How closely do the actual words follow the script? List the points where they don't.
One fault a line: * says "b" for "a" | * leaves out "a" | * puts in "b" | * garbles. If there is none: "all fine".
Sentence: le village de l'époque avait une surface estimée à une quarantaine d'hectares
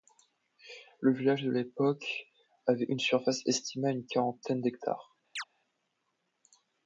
all fine